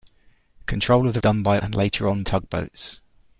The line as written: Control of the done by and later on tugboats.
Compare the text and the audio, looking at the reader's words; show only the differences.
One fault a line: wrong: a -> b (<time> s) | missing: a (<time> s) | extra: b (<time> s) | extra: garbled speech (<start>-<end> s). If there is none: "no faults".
no faults